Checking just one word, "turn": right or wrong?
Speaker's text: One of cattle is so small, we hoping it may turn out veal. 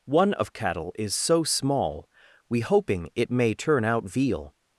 right